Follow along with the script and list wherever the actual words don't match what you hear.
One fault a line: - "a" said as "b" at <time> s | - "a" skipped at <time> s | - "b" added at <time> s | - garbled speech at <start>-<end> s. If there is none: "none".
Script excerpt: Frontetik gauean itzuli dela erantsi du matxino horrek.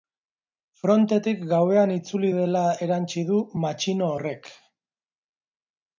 none